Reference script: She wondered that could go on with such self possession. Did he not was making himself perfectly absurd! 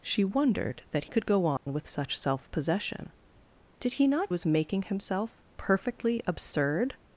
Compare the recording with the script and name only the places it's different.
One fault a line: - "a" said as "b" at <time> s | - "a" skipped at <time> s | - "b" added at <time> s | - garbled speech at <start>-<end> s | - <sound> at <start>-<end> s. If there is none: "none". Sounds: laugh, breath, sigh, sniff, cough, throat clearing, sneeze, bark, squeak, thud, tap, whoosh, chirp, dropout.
- dropout at 1.6-1.7 s